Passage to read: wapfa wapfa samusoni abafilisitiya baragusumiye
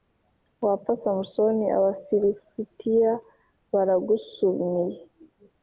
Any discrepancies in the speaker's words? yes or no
yes